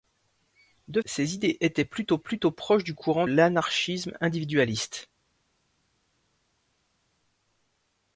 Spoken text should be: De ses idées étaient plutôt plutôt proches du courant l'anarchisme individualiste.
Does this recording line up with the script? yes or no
yes